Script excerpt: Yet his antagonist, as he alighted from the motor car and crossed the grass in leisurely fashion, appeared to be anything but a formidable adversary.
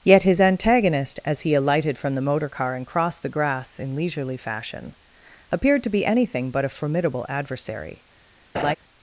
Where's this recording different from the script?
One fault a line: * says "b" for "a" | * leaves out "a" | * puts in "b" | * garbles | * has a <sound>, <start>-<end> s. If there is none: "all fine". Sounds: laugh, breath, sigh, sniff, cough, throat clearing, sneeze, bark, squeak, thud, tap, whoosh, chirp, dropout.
* has a laugh, 8.5-8.7 s